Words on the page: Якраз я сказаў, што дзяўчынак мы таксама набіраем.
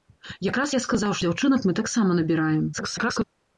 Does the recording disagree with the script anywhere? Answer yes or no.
yes